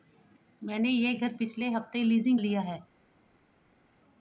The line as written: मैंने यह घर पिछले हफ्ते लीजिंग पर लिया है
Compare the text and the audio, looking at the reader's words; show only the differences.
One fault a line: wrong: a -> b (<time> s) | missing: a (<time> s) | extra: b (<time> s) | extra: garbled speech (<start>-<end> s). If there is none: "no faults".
missing: पर (2.4 s)